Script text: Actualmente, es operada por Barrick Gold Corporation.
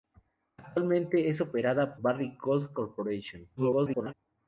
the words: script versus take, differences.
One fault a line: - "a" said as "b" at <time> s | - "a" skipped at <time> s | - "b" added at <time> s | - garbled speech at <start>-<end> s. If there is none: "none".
- "por" skipped at 1.9 s
- garbled speech at 3.6-4.1 s